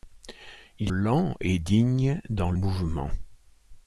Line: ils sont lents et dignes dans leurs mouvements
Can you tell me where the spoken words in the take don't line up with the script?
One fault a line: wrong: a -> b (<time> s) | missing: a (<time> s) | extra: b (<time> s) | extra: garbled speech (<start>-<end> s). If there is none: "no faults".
missing: sont (0.9 s)
missing: leurs (2.5 s)